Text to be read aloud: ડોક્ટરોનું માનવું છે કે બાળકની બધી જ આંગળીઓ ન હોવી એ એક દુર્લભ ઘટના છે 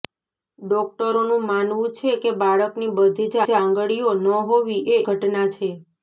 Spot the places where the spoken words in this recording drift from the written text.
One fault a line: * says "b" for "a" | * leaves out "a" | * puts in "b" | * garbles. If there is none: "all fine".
* puts in "જ"
* leaves out "એક દુર્લભ"